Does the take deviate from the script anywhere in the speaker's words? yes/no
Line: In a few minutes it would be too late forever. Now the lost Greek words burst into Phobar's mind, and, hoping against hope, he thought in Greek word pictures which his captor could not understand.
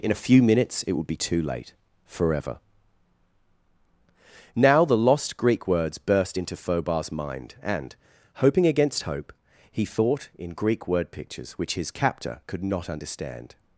no